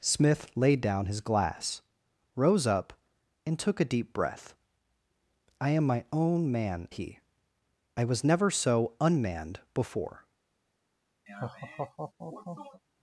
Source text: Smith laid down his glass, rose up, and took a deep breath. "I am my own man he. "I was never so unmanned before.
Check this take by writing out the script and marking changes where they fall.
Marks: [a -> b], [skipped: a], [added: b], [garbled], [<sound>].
Smith laid down his glass, rose up, and took a deep breath. "I am my own man he. "I was never so unmanned before. [laugh]